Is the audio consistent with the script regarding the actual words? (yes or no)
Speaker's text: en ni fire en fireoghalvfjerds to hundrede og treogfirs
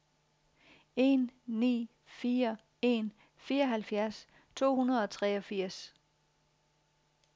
yes